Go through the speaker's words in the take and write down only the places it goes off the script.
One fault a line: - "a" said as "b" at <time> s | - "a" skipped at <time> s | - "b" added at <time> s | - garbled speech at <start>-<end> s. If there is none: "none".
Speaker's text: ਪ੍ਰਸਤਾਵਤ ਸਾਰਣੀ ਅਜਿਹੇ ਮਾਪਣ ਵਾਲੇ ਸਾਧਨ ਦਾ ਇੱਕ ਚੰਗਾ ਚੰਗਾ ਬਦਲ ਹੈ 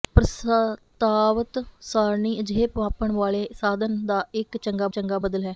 none